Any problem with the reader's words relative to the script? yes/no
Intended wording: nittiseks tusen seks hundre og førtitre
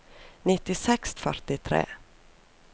yes